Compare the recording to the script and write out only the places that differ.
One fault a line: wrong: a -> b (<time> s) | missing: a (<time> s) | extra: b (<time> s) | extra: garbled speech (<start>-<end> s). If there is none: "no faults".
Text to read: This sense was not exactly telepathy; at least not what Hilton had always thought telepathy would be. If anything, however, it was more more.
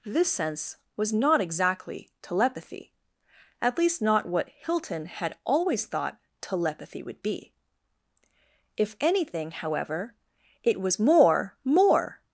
no faults